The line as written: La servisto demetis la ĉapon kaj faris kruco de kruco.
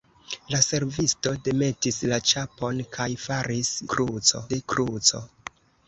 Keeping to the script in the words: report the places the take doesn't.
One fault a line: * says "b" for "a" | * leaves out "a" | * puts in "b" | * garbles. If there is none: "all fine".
all fine